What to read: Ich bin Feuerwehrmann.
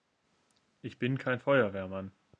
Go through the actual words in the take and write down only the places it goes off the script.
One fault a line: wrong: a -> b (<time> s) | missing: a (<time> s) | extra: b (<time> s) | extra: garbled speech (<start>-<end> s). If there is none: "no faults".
extra: kein (1.2 s)